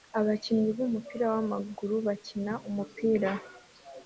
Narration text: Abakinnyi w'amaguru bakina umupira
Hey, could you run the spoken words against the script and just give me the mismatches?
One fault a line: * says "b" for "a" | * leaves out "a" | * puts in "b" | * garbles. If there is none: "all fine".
* puts in "b'umupira"